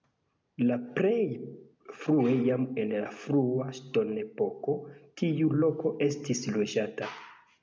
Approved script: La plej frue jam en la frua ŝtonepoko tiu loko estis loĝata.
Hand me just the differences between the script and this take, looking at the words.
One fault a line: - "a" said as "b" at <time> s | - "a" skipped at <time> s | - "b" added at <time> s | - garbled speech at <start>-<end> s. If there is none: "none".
none